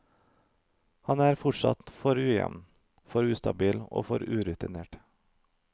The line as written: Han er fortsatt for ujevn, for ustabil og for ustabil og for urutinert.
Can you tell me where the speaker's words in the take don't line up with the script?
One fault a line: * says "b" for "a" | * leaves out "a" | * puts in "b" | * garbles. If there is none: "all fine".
* leaves out "ustabil og for"